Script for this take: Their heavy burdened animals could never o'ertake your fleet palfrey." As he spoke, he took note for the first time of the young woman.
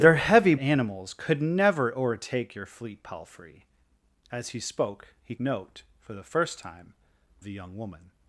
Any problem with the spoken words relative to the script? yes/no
yes